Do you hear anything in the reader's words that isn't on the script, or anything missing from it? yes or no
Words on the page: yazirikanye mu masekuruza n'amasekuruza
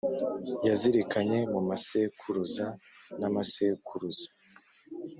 no